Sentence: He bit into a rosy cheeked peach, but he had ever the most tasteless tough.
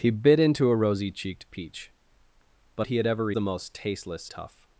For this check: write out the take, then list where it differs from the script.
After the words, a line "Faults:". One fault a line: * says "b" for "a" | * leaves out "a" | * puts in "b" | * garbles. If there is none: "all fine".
He bit into a rosy cheeked peach, but he had ever the most tasteless tough.
Faults:
all fine